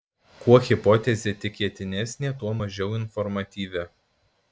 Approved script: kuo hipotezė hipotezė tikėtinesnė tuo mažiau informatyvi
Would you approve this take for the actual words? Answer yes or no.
no